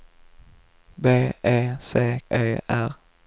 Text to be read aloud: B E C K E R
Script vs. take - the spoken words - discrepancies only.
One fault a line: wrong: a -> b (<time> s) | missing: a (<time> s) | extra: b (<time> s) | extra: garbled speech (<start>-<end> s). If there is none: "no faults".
missing: K (2.2 s)